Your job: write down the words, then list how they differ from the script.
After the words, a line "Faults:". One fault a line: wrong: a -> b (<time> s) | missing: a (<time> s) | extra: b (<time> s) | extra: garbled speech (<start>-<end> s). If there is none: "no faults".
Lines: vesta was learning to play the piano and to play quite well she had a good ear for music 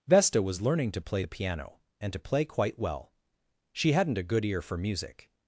vesta was learning to play the piano and to play quite well she hadn't a good ear for music
Faults:
wrong: had -> hadn't (3.9 s)